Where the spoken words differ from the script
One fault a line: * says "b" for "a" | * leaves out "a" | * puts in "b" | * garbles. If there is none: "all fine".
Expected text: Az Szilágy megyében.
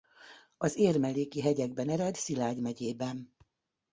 * puts in "Érmelléki hegyekben ered"